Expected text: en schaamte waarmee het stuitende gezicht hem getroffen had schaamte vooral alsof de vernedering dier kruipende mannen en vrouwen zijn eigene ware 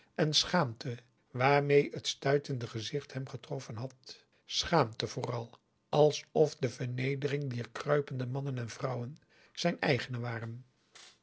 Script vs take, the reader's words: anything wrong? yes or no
no